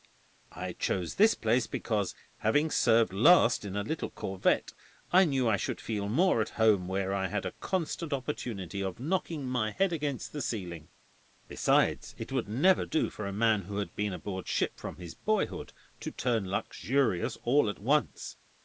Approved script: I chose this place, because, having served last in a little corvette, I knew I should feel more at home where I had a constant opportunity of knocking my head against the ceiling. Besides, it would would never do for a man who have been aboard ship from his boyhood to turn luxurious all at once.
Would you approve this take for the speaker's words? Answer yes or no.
no